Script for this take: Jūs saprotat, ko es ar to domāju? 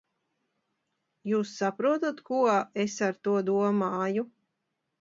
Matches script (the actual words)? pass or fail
pass